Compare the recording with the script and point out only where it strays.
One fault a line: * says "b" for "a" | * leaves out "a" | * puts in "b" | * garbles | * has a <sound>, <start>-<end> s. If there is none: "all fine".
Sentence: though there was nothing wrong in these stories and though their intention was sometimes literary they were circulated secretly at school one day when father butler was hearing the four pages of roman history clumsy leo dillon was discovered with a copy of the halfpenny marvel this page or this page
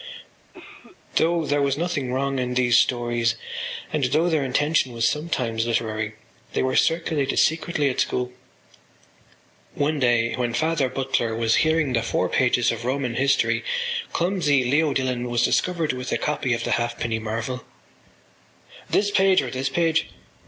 * has a cough, 0.5-1.0 s